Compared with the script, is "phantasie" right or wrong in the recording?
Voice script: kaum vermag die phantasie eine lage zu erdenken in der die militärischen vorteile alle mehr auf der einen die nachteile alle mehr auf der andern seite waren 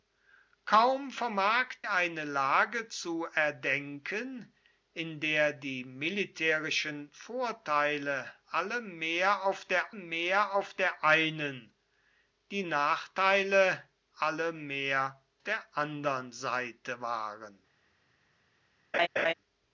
wrong